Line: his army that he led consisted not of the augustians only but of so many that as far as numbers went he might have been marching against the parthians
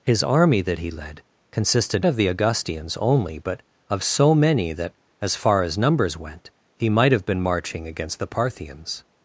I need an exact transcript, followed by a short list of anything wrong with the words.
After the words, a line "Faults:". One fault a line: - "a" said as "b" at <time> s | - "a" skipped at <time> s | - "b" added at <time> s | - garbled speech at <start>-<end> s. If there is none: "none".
his army that he led consisted of the augustians only but of so many that as far as numbers went he might have been marching against the parthians
Faults:
- "not" skipped at 2.0 s